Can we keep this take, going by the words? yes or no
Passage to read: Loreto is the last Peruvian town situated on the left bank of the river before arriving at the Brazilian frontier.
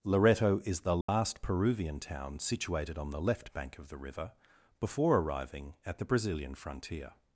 yes